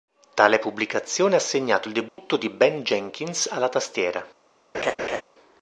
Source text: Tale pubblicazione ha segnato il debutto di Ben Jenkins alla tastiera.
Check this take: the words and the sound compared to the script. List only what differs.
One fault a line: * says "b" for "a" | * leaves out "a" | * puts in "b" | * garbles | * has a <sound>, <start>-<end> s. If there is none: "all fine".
* has a dropout, 2.1-2.2 s
* has a laugh, 4.7-5.2 s